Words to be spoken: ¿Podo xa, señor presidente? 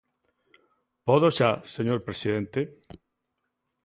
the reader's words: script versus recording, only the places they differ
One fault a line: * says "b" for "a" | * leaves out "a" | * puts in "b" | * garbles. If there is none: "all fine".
all fine